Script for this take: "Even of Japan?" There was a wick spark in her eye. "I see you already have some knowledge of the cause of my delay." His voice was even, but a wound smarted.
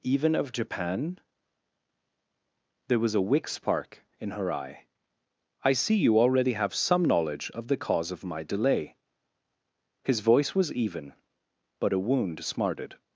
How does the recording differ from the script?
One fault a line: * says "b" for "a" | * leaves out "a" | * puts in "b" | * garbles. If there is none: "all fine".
all fine